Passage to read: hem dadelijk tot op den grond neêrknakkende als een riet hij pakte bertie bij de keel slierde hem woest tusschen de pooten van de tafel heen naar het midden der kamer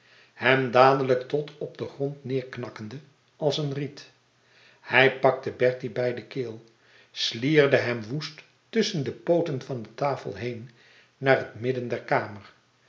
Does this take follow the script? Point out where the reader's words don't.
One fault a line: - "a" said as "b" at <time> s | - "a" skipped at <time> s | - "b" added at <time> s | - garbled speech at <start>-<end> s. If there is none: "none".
none